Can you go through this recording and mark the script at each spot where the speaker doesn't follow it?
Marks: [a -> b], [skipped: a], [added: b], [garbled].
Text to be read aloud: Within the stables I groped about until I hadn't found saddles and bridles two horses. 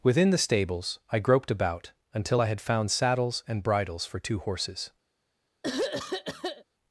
Within the stables I groped about until I [hadn't -> had] found saddles and bridles [added: for] two horses.